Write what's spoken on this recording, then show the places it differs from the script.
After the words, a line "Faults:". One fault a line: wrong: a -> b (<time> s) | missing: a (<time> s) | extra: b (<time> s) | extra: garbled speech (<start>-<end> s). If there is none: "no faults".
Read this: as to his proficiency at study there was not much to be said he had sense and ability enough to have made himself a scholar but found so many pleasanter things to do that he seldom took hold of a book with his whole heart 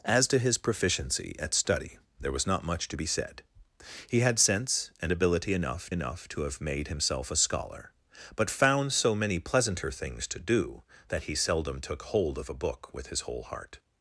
as to his proficiency at study there was not much to be said he had sense and ability enough enough to have made himself a scholar but found so many pleasanter things to do that he seldom took hold of a book with his whole heart
Faults:
extra: enough (5.9 s)